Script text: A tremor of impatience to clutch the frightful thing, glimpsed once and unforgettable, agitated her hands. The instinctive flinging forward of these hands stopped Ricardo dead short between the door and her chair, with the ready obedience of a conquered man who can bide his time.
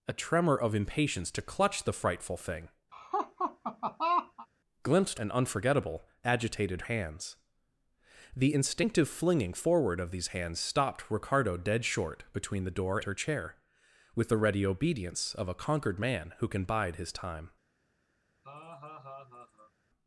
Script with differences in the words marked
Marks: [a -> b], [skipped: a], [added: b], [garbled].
A tremor of impatience to clutch the frightful thing, glimpsed [skipped: once] and unforgettable, agitated [skipped: her] hands. The instinctive flinging forward of these hands stopped Ricardo dead short between the door [skipped: and] her chair, with the ready obedience of a conquered man who can bide his time.